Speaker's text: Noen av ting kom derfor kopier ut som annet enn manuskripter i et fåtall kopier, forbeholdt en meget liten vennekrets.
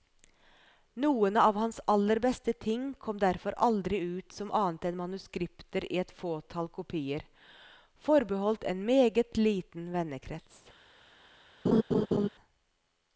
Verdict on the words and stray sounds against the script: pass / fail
fail